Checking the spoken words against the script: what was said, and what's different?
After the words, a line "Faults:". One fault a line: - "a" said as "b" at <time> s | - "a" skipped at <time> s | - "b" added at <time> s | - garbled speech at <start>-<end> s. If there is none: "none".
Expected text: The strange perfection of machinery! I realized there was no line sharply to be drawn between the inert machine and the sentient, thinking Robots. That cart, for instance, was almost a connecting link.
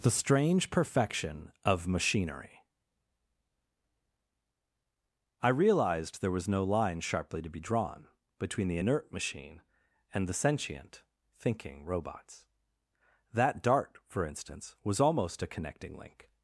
The strange perfection of machinery! I realized there was no line sharply to be drawn between the inert machine and the sentient, thinking Robots. That dart, for instance, was almost a connecting link.
Faults:
- "cart" said as "dart" at 13.6 s